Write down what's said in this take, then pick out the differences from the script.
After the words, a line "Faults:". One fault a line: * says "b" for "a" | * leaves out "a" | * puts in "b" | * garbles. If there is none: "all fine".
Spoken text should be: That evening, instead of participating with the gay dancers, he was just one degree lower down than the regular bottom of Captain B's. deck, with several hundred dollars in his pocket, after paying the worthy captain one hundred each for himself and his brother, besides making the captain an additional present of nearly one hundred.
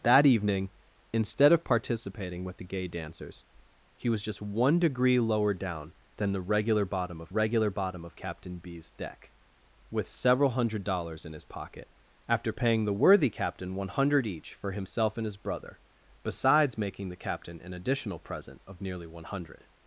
That evening, instead of participating with the gay dancers, he was just one degree lower down than the regular bottom of regular bottom of Captain B's. deck, with several hundred dollars in his pocket, after paying the worthy captain one hundred each for himself and his brother, besides making the captain an additional present of nearly one hundred.
Faults:
* puts in "regular bottom of"